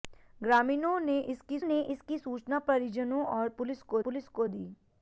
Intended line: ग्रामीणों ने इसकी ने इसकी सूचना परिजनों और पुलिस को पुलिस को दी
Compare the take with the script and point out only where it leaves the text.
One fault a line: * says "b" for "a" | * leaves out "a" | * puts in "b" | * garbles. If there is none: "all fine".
all fine